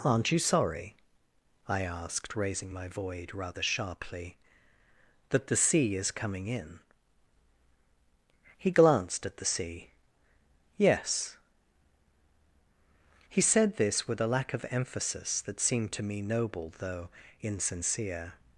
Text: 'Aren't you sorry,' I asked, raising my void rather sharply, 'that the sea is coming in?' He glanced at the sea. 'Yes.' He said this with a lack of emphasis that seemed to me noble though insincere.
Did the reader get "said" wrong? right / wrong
right